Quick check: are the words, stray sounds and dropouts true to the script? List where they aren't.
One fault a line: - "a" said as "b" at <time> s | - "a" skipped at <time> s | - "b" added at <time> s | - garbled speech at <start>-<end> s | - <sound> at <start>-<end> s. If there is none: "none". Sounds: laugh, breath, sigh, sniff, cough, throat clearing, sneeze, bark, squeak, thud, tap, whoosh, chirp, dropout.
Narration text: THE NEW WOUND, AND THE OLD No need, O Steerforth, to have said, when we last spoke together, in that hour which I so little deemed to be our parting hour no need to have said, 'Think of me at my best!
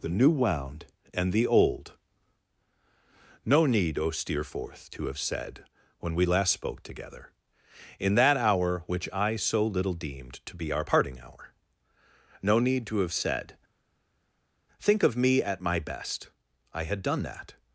- "I had done that" added at 16.7 s